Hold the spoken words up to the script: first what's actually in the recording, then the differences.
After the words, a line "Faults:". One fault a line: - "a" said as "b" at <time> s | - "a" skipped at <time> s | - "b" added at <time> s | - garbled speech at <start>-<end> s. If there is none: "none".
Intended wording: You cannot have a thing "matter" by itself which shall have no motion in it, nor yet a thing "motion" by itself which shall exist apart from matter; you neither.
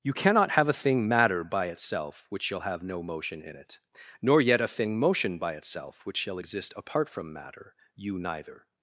You cannot have a thing "matter" by itself which shall have no motion in it, nor yet a thing "motion" by itself which shall exist apart from matter; you neither.
Faults:
none